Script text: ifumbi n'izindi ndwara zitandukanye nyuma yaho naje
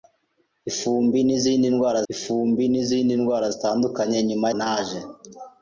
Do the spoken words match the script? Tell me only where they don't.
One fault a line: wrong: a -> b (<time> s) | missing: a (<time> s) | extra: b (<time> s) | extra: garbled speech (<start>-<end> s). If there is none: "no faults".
extra: ifumbi n'izindi ndwara (2.1 s)
missing: yaho (4.5 s)